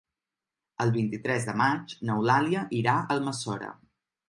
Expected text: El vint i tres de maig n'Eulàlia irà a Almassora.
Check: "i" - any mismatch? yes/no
no